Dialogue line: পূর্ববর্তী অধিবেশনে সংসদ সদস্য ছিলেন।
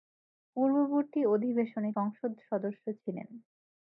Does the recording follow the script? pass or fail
pass